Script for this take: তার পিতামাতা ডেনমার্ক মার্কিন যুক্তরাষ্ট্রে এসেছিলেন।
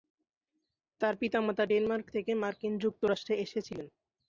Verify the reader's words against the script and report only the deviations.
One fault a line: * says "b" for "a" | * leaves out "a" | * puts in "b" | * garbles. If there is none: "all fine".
* puts in "থেকে"